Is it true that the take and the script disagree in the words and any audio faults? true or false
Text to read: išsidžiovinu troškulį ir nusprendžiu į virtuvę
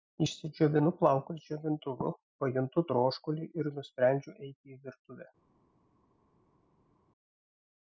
true